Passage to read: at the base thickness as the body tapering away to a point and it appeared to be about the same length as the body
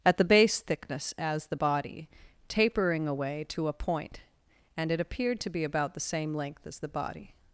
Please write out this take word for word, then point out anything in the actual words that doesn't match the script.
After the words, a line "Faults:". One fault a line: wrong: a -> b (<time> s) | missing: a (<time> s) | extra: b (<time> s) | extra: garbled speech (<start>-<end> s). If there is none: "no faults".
at the base thickness as the body tapering away to a point and it appeared to be about the same length as the body
Faults:
no faults